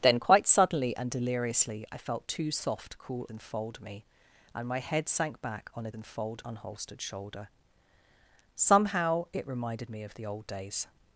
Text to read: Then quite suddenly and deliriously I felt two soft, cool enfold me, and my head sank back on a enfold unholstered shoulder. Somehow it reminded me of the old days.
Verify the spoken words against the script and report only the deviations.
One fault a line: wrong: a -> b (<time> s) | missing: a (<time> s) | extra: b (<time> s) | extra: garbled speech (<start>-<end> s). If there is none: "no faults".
no faults